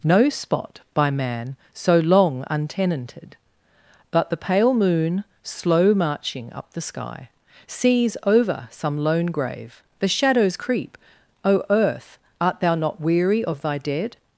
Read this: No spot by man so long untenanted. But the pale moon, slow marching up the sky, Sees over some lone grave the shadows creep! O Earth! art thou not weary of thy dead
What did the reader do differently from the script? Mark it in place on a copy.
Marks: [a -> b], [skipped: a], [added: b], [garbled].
No spot by man so long untenanted. But the pale moon, slow marching up the sky, Sees over some lone grave the shadows creep! O Earth! art thou not weary of thy dead